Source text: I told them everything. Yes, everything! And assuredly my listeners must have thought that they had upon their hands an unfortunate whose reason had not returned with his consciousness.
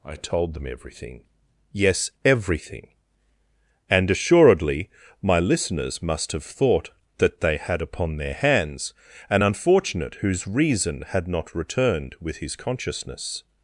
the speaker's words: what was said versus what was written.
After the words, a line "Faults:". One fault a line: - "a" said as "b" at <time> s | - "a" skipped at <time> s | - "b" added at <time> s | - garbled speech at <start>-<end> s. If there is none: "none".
I told them everything. Yes, everything! And assuredly my listeners must have thought that they had upon their hands an unfortunate whose reason had not returned with his consciousness.
Faults:
none